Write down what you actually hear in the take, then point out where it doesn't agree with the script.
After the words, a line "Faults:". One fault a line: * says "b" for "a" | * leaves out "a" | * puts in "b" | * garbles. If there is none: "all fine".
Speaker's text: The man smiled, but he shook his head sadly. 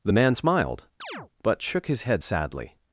The man smiled, but shook his head sadly.
Faults:
* leaves out "he"